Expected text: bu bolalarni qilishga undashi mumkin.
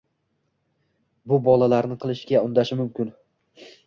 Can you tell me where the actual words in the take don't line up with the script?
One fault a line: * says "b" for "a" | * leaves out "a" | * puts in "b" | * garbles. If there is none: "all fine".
all fine